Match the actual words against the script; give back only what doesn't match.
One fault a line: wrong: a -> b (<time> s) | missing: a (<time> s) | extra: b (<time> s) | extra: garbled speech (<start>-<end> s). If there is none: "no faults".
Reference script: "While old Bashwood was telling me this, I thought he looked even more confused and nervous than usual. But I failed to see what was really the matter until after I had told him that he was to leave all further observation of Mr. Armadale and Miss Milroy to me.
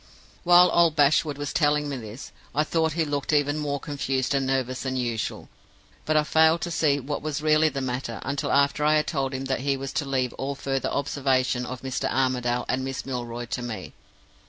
no faults